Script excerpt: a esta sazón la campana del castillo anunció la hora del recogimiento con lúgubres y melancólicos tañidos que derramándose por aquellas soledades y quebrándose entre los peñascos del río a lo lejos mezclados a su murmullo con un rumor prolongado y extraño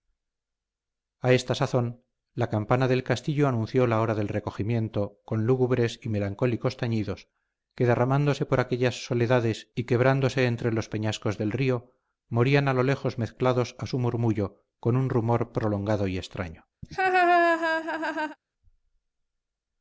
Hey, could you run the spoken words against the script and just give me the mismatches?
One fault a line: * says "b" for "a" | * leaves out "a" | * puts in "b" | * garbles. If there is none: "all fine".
* puts in "morían"